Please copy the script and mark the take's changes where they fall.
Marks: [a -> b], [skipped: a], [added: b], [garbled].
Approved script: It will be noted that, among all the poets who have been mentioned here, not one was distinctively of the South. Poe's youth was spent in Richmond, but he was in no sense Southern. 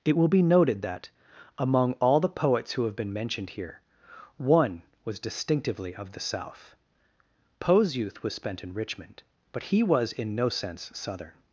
It will be noted that, among all the poets who have been mentioned here, [skipped: not] one was distinctively of the South. Poe's youth was spent in Richmond, but he was in no sense Southern.